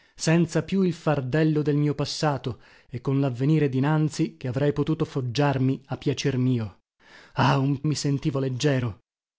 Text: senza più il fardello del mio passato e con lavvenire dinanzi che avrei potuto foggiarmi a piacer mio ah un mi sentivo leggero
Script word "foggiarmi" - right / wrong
right